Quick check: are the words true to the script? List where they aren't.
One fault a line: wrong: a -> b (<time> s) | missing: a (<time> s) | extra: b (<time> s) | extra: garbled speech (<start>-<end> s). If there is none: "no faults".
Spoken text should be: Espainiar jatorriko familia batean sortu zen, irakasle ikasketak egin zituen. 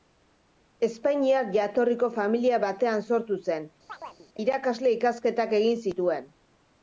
no faults